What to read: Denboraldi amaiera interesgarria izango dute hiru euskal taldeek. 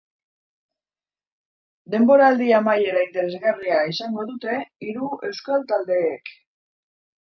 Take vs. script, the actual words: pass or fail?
pass